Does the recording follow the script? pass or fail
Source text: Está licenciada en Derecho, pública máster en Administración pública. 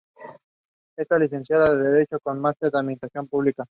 fail